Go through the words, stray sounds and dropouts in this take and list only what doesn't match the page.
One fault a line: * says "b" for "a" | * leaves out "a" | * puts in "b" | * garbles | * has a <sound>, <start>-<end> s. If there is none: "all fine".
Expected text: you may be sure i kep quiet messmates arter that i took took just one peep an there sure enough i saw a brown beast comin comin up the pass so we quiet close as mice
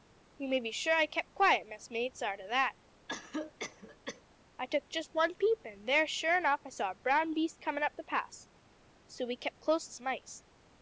* has a cough, 3.1-4.2 s
* leaves out "took"
* leaves out "comin"
* says "kep" for "quiet"